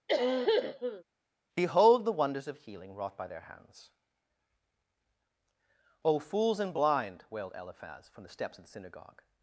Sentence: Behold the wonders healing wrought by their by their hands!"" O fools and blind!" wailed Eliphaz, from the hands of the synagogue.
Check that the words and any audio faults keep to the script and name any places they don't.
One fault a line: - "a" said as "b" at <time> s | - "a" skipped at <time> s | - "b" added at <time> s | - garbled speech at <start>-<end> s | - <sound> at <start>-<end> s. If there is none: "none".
- cough at 0.1-1.0 s
- "of" added at 2.5 s
- "by their" skipped at 3.4 s
- "hands" said as "steps" at 8.3 s